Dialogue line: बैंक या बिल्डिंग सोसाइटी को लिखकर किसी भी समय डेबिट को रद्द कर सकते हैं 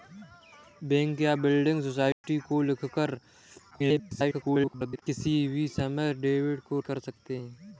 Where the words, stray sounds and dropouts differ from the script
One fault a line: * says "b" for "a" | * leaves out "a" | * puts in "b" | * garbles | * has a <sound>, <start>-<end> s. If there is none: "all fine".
* has a dropout, 2.1-2.2 s
* garbles
* leaves out "रद्द"